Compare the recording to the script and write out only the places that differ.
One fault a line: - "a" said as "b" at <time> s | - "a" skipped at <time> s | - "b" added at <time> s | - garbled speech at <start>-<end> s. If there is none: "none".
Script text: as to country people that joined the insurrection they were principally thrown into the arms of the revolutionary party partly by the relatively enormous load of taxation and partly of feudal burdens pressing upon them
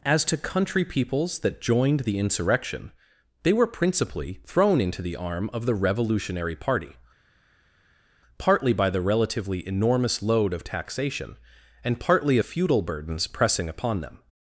- "people" said as "peoples" at 0.8 s
- "arms" said as "arm" at 5.2 s